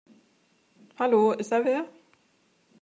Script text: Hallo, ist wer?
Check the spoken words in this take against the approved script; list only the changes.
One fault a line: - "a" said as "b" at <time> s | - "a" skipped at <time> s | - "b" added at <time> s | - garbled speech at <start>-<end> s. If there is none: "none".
- "da" added at 1.5 s